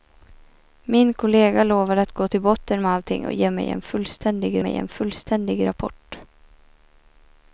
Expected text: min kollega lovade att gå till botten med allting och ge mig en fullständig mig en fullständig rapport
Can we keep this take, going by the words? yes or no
yes